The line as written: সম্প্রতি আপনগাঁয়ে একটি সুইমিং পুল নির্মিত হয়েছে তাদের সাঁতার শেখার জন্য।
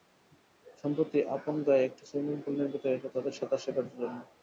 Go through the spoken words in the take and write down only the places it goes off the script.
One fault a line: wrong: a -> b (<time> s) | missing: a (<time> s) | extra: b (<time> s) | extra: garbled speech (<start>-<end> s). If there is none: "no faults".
no faults